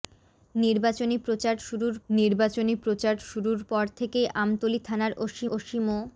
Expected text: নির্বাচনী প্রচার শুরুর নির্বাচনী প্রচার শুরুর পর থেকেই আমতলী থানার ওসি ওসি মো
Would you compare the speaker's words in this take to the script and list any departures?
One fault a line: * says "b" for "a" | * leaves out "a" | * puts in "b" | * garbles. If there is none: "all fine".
all fine